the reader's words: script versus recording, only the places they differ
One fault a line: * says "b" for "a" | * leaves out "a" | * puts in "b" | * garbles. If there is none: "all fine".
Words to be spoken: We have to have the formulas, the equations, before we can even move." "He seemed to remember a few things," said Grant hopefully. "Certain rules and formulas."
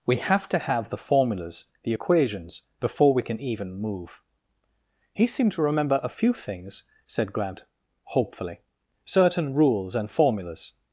all fine